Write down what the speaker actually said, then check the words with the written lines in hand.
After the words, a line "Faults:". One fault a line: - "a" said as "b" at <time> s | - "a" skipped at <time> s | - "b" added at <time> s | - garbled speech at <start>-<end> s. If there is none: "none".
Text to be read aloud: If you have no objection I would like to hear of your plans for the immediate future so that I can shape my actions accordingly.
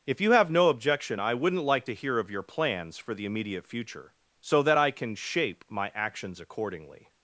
If you have no objection I wouldn't like to hear of your plans for the immediate future so that I can shape my actions accordingly.
Faults:
- "would" said as "wouldn't" at 1.3 s